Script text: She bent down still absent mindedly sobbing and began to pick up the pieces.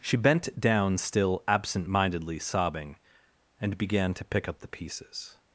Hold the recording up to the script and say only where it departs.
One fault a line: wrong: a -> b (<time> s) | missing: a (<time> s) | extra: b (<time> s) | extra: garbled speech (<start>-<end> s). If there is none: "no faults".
no faults